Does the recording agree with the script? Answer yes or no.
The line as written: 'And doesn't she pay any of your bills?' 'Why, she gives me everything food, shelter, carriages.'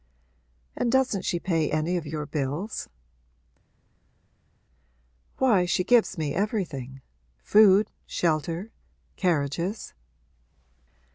yes